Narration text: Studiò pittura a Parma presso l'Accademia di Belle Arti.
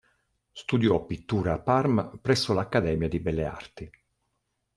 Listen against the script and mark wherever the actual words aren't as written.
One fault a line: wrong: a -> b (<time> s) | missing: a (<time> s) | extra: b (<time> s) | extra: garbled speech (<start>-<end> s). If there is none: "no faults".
no faults